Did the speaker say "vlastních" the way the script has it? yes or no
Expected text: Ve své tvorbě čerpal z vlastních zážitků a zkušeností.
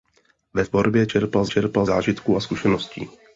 no